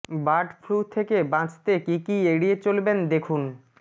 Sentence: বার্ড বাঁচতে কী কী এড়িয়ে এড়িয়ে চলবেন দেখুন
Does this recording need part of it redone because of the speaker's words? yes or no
yes